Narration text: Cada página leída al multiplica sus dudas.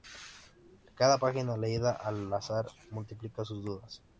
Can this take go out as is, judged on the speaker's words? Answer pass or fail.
fail